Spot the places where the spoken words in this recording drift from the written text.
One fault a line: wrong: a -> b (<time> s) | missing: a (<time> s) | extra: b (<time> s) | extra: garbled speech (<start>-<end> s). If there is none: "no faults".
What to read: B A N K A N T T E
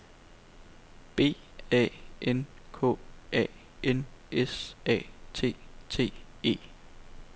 extra: S A (4.3 s)